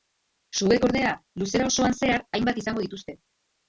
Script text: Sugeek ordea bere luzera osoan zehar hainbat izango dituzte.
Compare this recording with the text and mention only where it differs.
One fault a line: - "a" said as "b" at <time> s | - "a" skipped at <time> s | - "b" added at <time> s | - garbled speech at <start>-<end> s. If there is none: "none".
- "bere" skipped at 1.1 s